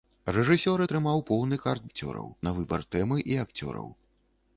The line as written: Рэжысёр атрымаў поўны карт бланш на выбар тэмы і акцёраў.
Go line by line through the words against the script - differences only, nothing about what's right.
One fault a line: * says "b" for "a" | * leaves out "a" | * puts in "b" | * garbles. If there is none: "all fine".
* says "акцёраў" for "бланш"